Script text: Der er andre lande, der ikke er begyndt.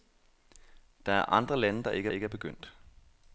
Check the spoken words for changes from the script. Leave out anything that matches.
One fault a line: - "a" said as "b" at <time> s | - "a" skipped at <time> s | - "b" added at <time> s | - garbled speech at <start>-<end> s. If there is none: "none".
- "ikke" added at 2.1 s